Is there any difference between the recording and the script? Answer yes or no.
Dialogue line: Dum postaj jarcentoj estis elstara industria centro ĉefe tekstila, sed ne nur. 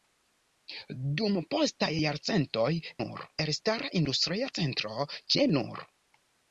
yes